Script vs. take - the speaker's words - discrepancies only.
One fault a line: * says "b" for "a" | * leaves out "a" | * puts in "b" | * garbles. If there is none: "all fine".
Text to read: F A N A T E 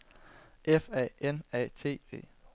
all fine